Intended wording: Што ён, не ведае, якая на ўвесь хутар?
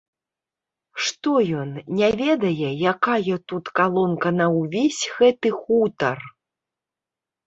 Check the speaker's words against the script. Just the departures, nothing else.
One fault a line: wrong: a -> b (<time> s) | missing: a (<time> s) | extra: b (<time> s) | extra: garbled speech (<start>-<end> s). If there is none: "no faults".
extra: тут калонка (3.5 s)
extra: гэты (5.2 s)